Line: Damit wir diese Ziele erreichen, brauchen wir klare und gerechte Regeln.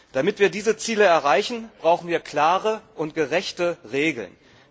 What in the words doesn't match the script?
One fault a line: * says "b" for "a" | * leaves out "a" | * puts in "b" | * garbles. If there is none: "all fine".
all fine